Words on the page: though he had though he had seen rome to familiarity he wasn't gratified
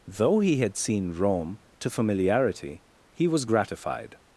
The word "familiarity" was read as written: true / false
true